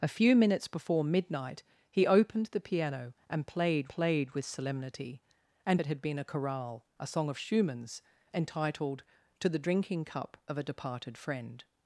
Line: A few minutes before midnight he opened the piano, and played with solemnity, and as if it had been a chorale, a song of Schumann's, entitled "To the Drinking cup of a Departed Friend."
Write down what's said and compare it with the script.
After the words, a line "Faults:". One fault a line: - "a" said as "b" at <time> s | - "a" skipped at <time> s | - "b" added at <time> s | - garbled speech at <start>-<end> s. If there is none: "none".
A few minutes before midnight he opened the piano, and played played with solemnity, and it had been a chorale, a song of Schumann's, entitled "To the Drinking cup of a Departed Friend."
Faults:
- "played" added at 3.9 s
- "as if" skipped at 5.8 s